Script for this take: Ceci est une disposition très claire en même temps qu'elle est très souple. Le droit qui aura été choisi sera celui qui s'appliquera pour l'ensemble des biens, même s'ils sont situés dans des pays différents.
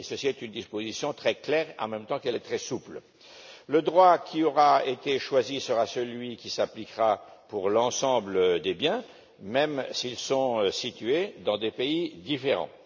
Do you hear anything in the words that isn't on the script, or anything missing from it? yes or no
no